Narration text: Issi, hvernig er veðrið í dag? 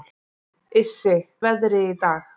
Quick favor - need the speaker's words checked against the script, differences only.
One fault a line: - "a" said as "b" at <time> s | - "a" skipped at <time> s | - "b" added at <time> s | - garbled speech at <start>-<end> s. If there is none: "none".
- "hvernig" skipped at 1.1 s